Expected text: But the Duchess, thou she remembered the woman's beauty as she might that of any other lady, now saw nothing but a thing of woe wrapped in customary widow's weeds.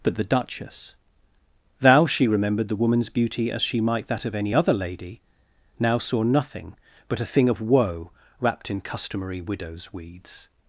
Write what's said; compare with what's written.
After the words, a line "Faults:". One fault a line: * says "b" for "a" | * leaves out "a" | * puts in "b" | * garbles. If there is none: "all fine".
But the Duchess, thou she remembered the woman's beauty as she might that of any other lady, now saw nothing but a thing of woe wrapped in customary widow's weeds.
Faults:
all fine